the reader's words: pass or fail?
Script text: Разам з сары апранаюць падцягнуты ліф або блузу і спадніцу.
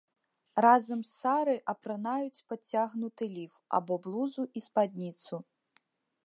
pass